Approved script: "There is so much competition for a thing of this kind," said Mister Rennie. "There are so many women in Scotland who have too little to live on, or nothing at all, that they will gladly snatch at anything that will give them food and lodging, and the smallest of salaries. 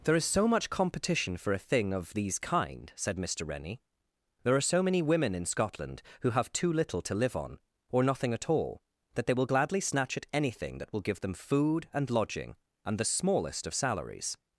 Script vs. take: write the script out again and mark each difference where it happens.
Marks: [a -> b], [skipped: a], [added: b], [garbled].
"There is so much competition for a thing of [this -> these] kind," said Mister Rennie. "There are so many women in Scotland who have too little to live on, or nothing at all, that they will gladly snatch at anything that will give them food and lodging, and the smallest of salaries.